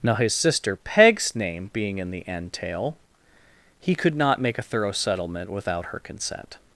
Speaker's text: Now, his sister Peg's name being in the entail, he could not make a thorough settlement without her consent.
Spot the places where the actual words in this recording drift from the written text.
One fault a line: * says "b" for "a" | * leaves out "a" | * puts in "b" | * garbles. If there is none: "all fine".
all fine